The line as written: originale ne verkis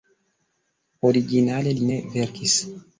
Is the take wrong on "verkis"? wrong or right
right